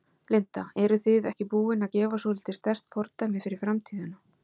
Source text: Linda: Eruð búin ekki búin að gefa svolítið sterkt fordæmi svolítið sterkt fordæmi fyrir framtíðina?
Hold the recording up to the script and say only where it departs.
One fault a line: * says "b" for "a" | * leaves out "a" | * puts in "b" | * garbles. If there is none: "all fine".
* says "þið" for "búin"
* leaves out "svolítið sterkt fordæmi"